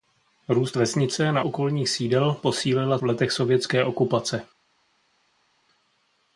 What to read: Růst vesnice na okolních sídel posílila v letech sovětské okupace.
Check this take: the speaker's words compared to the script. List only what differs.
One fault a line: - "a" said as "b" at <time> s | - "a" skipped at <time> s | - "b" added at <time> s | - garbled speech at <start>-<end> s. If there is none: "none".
none